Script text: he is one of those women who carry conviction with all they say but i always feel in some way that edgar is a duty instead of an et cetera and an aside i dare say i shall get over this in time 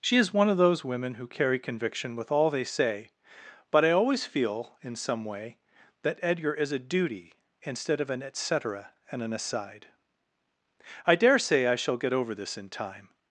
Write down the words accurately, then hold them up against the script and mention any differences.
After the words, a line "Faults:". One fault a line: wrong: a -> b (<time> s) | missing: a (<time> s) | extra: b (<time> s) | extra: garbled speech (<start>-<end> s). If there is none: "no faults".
she is one of those women who carry conviction with all they say but i always feel in some way that edgar is a duty instead of an et cetera and an aside i dare say i shall get over this in time
Faults:
wrong: he -> she (0.0 s)